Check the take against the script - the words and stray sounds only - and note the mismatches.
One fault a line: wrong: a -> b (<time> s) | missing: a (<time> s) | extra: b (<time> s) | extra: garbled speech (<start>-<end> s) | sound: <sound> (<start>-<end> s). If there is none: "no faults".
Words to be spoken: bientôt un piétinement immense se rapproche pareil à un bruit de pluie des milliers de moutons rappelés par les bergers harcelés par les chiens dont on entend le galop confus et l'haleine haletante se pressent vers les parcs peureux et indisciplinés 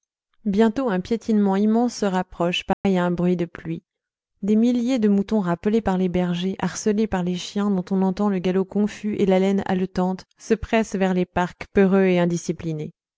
sound: dropout (2.7-2.8 s)